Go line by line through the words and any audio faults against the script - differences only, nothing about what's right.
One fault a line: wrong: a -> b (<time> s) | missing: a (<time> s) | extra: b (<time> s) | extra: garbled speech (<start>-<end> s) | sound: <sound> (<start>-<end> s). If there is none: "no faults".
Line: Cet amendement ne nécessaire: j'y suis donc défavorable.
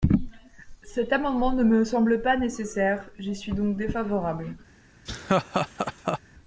extra: me semble pas (1.6 s)
sound: laugh (5.1-6.2 s)